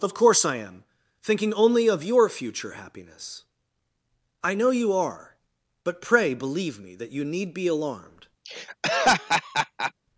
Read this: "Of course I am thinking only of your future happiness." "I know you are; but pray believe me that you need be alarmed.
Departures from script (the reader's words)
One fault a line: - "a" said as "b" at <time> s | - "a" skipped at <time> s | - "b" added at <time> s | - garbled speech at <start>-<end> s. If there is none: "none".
none